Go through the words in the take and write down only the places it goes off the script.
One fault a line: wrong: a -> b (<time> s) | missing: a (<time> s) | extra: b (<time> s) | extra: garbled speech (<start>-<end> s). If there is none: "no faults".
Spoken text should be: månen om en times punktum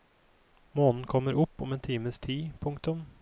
extra: kommer opp (1.1 s)
extra: tid (2.2 s)